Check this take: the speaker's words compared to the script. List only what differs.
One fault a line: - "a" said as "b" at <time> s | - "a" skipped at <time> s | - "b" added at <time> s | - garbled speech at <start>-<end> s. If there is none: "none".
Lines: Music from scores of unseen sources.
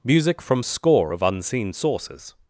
- "scores" said as "score" at 0.6 s